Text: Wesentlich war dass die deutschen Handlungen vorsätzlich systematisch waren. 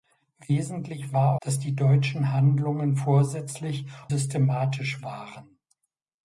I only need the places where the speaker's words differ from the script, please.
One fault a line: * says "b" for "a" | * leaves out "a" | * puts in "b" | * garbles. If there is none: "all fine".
all fine